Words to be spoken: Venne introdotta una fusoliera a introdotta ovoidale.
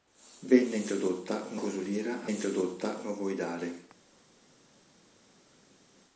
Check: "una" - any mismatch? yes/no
no